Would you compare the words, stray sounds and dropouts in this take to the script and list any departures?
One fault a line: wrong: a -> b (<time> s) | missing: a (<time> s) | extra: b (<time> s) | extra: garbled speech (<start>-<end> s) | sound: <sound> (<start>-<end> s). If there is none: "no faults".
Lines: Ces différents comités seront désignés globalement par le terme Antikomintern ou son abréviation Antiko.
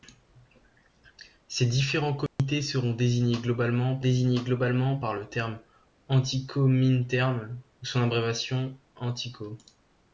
sound: dropout (2.3-2.4 s)
extra: désignés globalement (4.0 s)